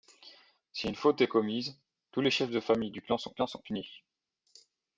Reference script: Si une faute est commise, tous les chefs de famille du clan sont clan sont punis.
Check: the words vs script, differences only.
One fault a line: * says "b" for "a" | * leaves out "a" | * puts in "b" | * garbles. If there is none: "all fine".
all fine